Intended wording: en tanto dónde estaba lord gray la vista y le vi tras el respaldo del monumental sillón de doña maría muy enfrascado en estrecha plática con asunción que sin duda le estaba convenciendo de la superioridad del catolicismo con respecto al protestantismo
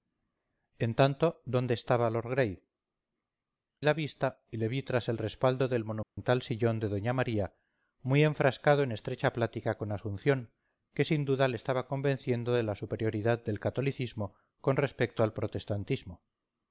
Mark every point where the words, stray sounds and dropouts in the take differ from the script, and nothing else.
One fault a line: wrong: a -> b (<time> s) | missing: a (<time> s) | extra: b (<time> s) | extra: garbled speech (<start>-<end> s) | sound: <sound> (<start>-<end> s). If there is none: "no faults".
sound: dropout (6.0-6.2 s)